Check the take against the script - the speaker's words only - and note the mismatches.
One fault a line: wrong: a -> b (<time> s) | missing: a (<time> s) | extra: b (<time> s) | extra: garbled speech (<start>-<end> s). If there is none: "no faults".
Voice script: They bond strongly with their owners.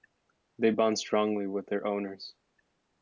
no faults